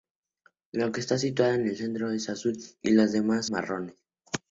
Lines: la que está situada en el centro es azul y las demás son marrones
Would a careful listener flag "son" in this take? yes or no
yes